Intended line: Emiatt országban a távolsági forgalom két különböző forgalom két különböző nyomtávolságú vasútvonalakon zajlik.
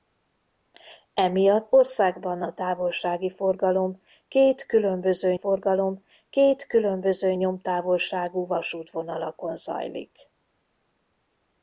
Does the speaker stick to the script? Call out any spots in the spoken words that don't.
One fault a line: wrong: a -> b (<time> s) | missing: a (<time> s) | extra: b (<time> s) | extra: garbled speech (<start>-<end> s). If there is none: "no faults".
no faults